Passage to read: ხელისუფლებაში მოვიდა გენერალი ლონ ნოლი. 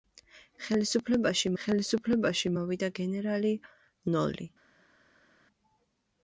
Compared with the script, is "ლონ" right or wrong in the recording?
wrong